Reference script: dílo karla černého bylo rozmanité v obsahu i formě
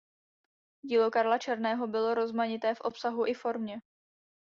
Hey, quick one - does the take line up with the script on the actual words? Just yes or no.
yes